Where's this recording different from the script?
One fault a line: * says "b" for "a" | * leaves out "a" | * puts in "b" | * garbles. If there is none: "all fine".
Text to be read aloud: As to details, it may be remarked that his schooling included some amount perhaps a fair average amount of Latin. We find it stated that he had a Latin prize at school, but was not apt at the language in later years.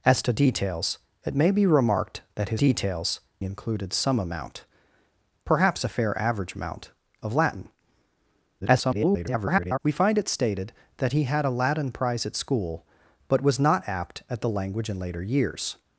* says "details" for "schooling"
* garbles